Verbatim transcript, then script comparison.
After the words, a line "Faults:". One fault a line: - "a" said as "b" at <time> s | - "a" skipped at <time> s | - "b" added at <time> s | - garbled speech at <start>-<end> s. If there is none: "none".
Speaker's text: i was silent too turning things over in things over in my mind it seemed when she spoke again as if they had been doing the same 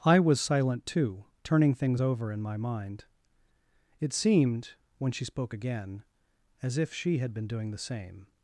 i was silent too turning things over in my mind it seemed when she spoke again as if she had been doing the same
Faults:
- "things over in" skipped at 2.4 s
- "they" said as "she" at 6.9 s